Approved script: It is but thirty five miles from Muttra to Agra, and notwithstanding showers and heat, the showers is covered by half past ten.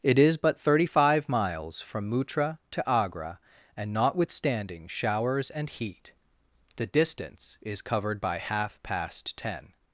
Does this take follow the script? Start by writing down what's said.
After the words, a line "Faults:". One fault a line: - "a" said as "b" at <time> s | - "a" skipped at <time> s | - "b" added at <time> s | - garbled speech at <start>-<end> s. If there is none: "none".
It is but thirty five miles from Muttra to Agra, and notwithstanding showers and heat, the distance is covered by half past ten.
Faults:
- "showers" said as "distance" at 6.9 s